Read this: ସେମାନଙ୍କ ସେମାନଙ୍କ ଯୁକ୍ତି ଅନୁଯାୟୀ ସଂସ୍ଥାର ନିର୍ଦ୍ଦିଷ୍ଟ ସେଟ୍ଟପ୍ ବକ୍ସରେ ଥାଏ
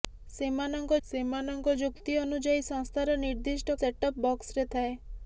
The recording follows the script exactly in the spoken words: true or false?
true